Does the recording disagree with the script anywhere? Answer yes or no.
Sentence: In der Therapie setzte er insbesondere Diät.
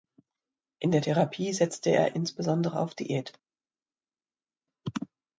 yes